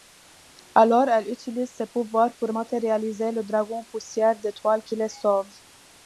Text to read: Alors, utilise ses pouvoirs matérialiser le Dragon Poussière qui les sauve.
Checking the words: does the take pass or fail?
fail